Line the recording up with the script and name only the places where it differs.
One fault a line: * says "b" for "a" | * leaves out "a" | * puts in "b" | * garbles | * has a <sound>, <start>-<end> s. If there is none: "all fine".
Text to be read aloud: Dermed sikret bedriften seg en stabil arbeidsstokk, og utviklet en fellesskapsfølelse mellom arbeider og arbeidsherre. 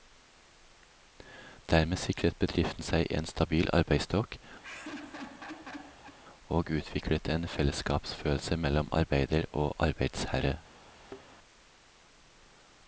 * has a laugh, 4.6-6.2 s
* has a thud, 10.9-11.2 s